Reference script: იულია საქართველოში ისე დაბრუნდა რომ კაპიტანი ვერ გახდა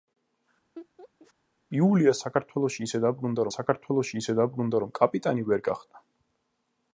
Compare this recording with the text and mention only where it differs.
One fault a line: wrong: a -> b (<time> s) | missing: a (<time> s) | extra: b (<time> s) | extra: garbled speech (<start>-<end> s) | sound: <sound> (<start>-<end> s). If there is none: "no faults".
sound: laugh (0.8-1.3 s)
extra: საქართველოში ისე დაბრუნდა (3.5 s)